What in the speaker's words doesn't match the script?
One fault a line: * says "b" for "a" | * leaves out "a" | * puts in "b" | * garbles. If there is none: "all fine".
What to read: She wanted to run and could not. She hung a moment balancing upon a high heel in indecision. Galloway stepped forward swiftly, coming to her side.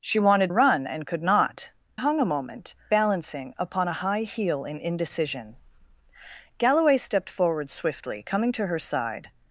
* leaves out "to"
* leaves out "She"